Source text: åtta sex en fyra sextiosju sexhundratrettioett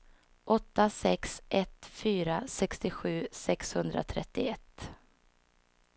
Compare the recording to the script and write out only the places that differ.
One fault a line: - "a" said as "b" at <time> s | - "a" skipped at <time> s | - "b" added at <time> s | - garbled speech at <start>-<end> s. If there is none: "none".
- "en" said as "ett" at 1.5 s